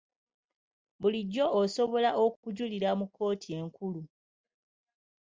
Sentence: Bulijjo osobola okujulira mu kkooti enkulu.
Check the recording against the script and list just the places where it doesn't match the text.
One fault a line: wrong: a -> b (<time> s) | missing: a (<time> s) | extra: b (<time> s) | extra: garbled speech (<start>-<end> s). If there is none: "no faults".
no faults